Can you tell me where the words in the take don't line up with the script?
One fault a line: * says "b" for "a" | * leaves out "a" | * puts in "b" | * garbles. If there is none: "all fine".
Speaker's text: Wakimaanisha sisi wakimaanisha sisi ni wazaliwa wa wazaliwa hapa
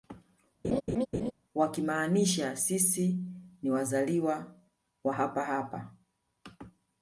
* leaves out "wakimaanisha sisi"
* says "hapa" for "wazaliwa"